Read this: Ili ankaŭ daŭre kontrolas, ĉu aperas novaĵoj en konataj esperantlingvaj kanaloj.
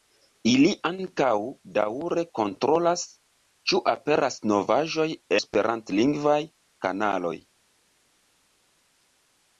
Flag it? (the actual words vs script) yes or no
yes